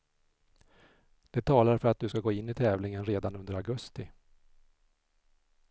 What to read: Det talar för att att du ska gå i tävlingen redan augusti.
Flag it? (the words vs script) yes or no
yes